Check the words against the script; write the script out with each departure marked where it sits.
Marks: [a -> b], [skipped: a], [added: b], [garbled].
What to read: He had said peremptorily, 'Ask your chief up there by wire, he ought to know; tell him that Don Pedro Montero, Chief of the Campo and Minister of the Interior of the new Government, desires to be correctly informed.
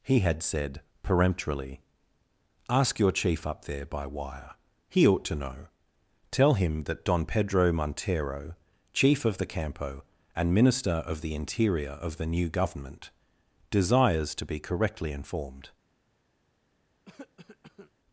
He had said peremptorily, 'Ask your chief up there by wire, he ought to know; tell him that Don Pedro Montero, Chief of the Campo and Minister of the Interior of the new Government, desires to be correctly informed.